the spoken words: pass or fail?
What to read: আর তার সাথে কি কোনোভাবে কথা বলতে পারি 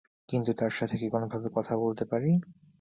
fail